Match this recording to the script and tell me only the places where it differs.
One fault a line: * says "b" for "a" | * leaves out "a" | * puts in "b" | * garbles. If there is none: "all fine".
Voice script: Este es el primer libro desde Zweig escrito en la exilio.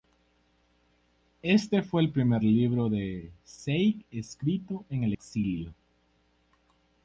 * says "fue" for "es"
* says "de" for "desde"
* says "el" for "la"